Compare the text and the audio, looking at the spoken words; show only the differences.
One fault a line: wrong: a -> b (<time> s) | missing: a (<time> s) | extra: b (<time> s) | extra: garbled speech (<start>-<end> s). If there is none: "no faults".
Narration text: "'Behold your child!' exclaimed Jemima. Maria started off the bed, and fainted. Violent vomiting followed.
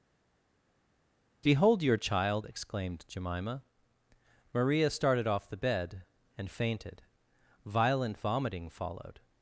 no faults